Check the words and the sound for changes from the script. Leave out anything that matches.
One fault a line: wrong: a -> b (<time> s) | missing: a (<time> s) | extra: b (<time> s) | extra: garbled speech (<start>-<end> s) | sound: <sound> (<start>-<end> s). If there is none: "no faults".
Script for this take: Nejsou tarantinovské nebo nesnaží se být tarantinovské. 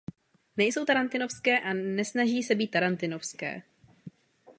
wrong: nebo -> a (1.6 s)